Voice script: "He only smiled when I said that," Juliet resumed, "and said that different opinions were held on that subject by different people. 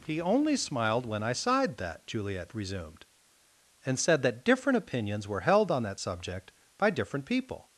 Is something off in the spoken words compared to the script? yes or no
yes